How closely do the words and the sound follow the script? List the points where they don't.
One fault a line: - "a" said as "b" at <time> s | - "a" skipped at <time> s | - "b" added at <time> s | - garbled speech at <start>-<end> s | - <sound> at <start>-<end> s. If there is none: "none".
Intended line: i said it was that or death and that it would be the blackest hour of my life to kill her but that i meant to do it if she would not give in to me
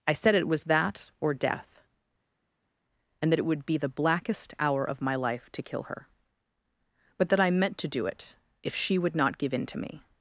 none